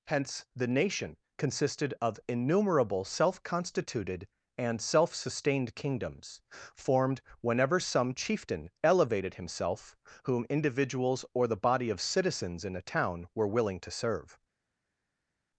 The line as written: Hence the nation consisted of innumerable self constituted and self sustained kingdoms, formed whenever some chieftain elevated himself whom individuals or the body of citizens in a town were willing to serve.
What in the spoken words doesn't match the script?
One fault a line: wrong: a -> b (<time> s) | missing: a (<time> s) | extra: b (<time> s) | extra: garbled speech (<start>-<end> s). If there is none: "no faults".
no faults